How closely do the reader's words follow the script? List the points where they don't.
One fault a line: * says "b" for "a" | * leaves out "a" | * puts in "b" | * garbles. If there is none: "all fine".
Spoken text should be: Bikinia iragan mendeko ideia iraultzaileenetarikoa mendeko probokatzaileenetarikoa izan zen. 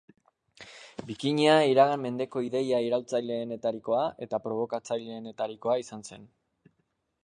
* says "eta" for "mendeko"